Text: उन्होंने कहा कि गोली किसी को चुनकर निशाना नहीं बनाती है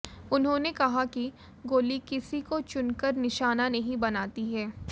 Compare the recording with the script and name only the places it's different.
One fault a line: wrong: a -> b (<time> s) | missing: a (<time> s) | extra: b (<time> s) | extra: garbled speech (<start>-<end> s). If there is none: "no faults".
no faults